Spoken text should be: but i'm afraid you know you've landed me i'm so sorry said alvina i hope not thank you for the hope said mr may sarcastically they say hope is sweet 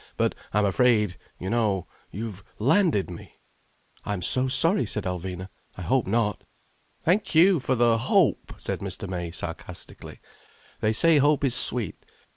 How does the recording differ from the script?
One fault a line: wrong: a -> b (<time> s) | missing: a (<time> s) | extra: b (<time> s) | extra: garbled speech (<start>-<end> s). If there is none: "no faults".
no faults